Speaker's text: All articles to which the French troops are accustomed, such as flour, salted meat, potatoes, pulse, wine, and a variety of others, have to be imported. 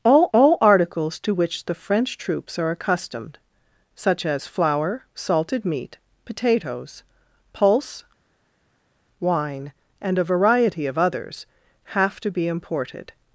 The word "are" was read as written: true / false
true